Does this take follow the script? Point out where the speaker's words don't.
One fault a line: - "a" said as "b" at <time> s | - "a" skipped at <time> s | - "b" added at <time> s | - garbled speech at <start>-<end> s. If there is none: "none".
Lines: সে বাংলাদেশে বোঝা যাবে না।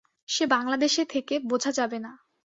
- "থেকে" added at 1.0 s